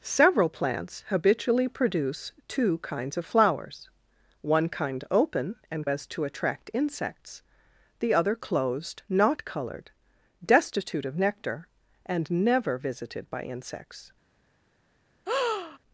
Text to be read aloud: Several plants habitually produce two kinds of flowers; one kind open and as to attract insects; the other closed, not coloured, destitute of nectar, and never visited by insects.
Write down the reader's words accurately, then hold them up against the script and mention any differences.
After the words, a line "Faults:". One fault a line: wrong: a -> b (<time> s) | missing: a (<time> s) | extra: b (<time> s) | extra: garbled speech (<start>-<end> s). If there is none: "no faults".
Several plants habitually produce two kinds of flowers; one kind open and as to attract insects; the other closed, not coloured, destitute of nectar, and never visited by insects.
Faults:
no faults